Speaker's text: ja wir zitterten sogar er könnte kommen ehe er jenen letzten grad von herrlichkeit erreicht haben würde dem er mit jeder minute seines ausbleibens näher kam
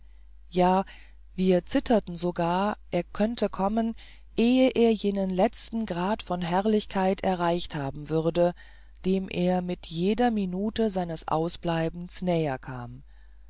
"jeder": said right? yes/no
yes